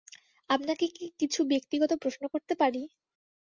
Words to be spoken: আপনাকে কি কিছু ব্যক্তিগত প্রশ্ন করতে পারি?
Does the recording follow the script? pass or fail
pass